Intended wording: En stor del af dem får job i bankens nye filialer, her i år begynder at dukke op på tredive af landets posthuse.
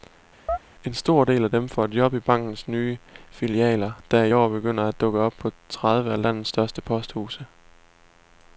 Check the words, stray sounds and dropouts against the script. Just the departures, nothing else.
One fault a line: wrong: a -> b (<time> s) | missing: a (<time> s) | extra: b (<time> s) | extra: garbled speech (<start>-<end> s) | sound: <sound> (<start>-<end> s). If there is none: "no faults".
sound: chirp (0.5-0.6 s)
wrong: her -> der (4.1 s)
extra: største (6.5 s)